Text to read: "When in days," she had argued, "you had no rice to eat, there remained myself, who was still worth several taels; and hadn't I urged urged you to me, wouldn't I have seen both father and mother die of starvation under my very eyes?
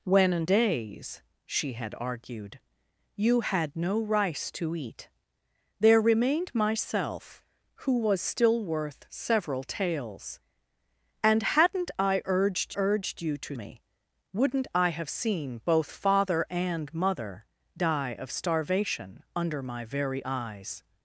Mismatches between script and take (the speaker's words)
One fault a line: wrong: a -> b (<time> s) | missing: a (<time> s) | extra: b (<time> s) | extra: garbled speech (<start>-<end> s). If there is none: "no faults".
no faults